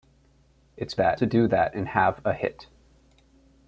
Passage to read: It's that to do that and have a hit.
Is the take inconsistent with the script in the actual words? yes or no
no